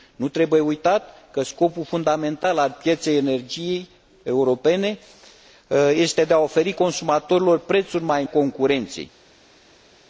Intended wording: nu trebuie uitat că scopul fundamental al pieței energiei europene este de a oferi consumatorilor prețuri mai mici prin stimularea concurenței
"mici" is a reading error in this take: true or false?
true